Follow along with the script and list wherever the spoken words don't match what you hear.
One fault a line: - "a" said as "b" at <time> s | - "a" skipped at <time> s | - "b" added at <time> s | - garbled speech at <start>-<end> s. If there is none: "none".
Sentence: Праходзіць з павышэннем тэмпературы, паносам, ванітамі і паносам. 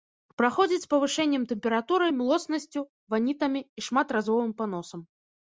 - "паносам" said as "млоснасцю" at 2.2 s
- "шматразовым" added at 3.9 s